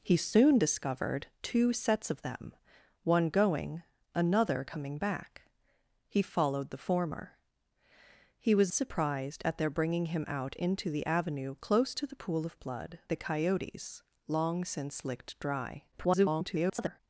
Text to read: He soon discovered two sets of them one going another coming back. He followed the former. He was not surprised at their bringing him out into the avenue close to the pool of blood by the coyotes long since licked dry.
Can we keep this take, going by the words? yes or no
no